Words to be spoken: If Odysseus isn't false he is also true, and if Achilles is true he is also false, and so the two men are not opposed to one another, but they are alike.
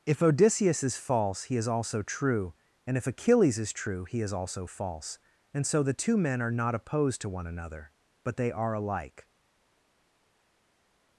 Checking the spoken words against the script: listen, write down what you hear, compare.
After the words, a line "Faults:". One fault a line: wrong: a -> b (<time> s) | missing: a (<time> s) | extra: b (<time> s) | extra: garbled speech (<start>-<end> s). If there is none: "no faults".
If Odysseus is false he is also true, and if Achilles is true he is also false, and so the two men are not opposed to one another, but they are alike.
Faults:
wrong: isn't -> is (0.8 s)